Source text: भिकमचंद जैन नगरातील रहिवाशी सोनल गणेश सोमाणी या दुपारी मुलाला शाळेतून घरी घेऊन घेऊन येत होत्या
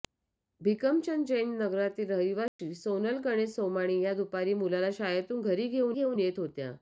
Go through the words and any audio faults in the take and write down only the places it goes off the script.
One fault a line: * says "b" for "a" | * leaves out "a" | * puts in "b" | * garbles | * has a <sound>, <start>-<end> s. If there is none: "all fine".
* has a dropout, 2.5-2.6 s